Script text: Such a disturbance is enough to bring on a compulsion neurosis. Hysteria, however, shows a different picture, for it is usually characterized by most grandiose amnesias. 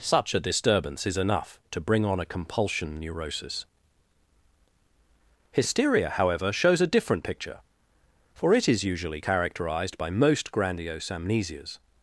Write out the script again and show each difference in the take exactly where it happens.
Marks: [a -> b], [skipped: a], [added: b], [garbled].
Such a disturbance is enough to bring on a compulsion neurosis. Hysteria, however, shows a different picture, for it is usually characterized by most grandiose amnesias.